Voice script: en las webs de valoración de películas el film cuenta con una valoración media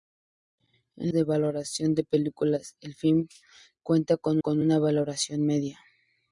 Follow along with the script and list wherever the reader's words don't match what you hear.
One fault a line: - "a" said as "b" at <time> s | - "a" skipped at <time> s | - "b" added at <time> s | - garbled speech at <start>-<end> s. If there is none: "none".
- "las webs" skipped at 1.1 s
- "con" added at 4.4 s